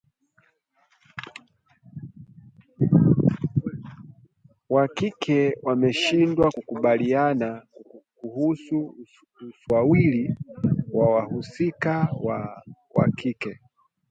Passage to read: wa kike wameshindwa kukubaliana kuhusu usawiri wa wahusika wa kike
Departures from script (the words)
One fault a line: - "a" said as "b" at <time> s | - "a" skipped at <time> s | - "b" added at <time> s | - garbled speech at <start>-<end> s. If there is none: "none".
none